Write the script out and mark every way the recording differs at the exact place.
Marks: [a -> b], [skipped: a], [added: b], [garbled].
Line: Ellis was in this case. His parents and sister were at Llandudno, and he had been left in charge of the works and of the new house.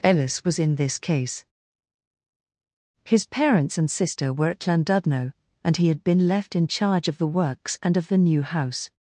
Ellis was in this case. His parents and sister were at Llandudno, and he had been left in charge of the works and of the new house.